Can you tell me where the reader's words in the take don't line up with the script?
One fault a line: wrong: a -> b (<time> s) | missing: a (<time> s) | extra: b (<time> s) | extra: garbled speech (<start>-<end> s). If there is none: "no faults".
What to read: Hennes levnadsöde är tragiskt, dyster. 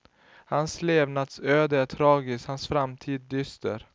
wrong: Hennes -> Hans (0.5 s)
extra: hans framtid (2.5 s)